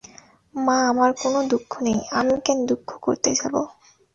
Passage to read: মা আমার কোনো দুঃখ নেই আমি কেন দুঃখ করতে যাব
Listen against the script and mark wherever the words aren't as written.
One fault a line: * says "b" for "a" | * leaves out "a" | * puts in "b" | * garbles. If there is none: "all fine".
all fine